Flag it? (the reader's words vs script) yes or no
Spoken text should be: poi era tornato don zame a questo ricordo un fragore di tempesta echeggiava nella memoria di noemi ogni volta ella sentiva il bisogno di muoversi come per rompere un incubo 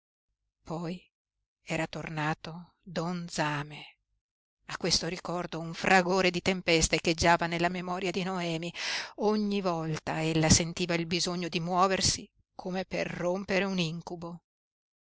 no